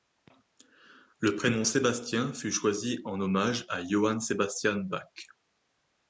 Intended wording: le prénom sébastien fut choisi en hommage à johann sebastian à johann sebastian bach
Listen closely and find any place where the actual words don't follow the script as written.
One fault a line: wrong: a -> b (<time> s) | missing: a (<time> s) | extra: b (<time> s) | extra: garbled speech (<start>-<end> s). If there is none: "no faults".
missing: à johann sebastian (4.8 s)